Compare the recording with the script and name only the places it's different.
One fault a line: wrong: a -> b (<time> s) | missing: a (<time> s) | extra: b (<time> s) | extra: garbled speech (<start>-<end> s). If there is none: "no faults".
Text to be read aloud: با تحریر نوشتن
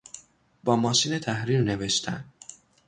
extra: ماشین (0.8 s)